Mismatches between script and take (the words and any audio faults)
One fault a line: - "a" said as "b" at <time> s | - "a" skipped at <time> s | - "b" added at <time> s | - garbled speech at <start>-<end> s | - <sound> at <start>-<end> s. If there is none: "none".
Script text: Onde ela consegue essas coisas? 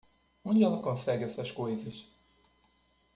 none